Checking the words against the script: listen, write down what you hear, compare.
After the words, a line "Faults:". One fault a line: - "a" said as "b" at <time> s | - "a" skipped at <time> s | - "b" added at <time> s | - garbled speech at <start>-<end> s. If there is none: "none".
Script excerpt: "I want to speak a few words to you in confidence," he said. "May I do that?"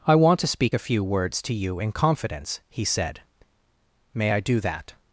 "I want to speak a few words to you in confidence," he said. "May I do that?"
Faults:
none